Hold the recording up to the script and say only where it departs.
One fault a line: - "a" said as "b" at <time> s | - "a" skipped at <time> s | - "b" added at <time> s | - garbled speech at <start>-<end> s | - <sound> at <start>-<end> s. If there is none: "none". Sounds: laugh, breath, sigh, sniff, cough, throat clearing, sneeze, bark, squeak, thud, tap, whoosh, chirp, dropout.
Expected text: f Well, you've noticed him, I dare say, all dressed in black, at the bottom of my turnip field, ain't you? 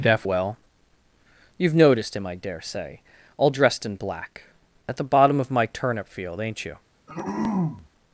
- "f" said as "deaf" at 0.0 s
- throat clearing at 7.1-7.9 s